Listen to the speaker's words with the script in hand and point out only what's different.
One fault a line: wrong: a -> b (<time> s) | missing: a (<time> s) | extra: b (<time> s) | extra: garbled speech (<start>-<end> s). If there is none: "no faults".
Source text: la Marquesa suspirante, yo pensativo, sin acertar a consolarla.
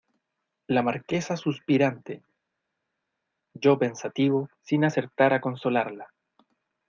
no faults